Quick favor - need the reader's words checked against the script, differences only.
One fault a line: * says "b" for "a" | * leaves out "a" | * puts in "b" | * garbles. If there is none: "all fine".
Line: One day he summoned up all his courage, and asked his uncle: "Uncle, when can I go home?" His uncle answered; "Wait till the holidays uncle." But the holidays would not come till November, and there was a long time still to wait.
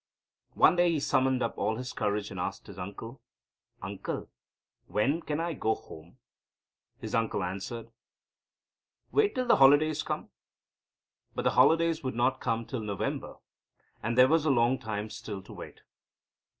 * says "come" for "uncle"